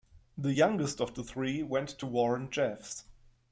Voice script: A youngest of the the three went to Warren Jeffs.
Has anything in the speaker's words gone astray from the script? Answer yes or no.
yes